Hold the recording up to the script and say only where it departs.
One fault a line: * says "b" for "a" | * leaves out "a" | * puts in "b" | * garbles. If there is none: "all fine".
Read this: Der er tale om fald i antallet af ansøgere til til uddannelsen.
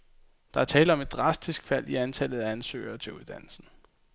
* puts in "et drastisk"
* leaves out "til"